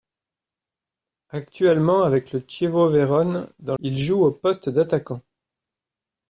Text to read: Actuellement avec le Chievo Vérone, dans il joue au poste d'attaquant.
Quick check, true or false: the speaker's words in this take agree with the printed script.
true